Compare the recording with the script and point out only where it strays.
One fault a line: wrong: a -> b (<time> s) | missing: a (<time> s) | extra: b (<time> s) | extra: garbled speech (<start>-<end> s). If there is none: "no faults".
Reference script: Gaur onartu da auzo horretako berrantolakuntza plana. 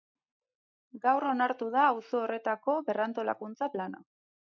no faults